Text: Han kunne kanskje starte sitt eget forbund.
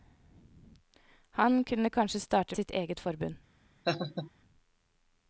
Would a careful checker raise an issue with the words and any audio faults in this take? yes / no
yes